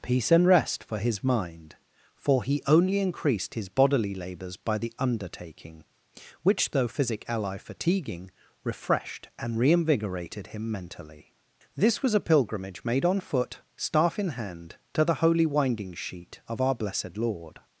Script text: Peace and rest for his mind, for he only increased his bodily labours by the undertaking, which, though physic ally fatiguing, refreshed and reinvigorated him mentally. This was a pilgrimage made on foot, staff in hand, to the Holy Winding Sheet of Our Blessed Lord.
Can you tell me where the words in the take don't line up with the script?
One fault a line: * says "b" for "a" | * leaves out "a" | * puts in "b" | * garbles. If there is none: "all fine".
all fine